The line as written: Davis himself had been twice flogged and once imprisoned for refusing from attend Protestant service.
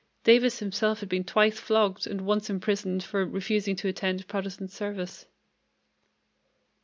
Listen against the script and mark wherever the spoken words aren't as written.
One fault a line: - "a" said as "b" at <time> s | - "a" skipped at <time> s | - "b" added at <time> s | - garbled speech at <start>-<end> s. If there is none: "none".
- "from" said as "to" at 3.8 s